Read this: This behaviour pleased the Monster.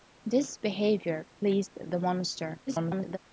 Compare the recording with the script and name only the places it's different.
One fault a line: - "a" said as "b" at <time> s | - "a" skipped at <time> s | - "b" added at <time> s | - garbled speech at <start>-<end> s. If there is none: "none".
- garbled speech at 2.7-3.2 s